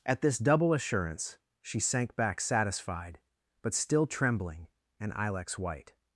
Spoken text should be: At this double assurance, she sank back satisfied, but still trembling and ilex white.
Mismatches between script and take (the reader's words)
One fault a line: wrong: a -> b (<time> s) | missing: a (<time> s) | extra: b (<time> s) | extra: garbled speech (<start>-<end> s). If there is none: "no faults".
no faults